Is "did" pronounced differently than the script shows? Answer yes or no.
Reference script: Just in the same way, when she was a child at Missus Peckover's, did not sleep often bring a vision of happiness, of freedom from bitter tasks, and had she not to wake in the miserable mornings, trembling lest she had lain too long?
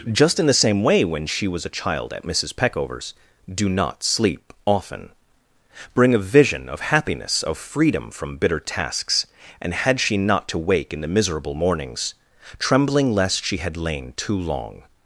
yes